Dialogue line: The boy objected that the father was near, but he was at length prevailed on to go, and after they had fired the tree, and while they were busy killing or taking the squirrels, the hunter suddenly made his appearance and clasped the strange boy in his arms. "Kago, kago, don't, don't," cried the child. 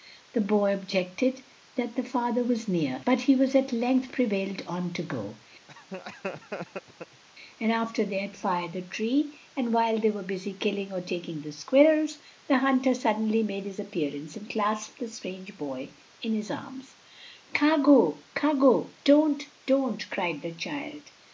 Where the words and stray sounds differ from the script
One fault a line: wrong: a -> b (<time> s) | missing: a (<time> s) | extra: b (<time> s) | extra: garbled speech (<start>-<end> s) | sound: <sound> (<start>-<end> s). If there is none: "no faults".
sound: laugh (5.7-7.2 s)